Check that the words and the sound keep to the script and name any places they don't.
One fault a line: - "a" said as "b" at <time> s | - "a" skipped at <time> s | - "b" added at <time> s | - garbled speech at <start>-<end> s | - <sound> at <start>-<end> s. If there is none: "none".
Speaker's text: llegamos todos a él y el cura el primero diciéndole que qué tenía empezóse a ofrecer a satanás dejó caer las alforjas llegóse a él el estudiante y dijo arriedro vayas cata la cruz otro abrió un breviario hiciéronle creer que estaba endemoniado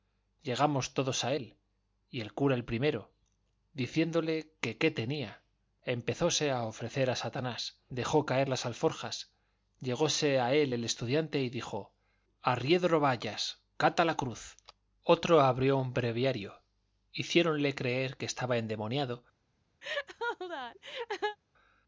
- laugh at 19.8-21.4 s